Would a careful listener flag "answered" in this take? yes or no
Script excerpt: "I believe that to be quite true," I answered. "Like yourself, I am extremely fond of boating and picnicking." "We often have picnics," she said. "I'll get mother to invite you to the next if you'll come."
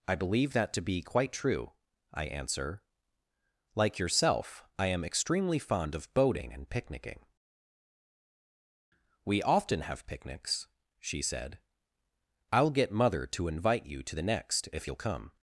yes